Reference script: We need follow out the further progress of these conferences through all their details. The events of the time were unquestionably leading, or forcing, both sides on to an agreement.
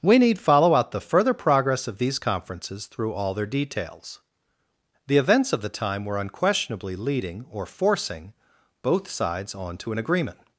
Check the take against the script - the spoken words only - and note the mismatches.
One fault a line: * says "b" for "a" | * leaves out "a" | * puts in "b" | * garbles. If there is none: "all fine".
all fine